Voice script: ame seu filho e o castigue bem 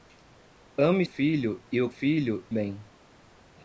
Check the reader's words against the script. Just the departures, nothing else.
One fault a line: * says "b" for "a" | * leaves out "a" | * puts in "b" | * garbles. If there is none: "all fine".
* leaves out "seu"
* says "filho" for "castigue"